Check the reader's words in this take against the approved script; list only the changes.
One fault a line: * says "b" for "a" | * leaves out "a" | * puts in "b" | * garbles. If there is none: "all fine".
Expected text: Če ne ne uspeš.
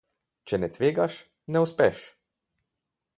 * puts in "tvegaš"